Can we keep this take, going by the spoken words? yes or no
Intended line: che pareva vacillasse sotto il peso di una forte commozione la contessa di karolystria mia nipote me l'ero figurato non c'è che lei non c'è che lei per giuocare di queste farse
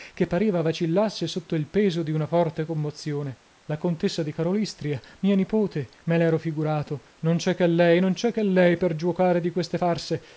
yes